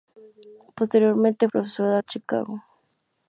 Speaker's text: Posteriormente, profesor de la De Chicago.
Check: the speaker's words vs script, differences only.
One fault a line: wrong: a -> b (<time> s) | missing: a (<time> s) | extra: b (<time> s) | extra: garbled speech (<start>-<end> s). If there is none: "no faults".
no faults